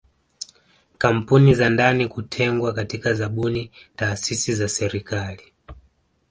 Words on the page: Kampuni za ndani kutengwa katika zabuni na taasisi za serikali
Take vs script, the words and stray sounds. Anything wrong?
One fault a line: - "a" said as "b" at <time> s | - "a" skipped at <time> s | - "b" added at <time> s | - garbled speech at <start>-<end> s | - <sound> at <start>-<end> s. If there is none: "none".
- "na" skipped at 3.7 s